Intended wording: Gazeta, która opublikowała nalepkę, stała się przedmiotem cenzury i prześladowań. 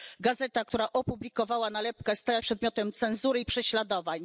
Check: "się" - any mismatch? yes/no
yes